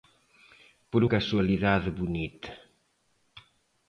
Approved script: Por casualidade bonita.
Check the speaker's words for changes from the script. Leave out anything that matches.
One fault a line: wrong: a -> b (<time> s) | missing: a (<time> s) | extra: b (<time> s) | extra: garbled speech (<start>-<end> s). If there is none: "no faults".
no faults